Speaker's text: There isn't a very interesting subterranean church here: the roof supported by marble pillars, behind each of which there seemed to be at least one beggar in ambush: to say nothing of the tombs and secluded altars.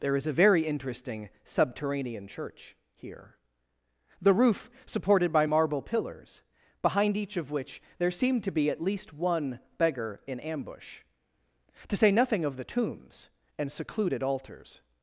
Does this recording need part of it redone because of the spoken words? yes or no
yes